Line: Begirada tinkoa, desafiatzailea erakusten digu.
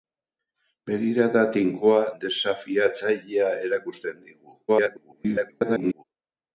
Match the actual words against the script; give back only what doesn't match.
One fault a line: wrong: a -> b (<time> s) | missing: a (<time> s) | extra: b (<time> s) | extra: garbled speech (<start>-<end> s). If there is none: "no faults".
extra: garbled speech (4.7-6.0 s)